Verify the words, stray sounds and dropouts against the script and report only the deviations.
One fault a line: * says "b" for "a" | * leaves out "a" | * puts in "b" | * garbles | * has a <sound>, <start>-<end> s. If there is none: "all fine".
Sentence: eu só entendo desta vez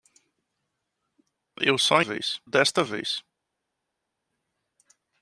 * says "vez" for "entendo"